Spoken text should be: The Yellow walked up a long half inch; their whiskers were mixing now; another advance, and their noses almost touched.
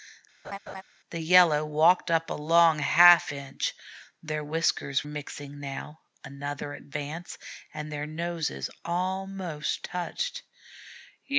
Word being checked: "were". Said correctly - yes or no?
no